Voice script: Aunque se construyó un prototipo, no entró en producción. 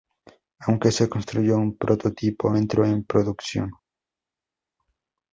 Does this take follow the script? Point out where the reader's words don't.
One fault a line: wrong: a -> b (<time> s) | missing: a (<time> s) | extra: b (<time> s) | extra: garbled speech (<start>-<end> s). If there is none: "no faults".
missing: no (2.5 s)